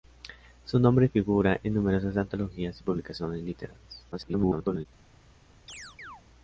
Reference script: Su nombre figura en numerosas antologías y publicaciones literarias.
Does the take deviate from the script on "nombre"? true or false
false